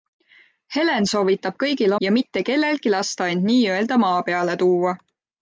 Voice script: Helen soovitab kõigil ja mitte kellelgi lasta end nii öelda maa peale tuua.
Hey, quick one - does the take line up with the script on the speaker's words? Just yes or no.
yes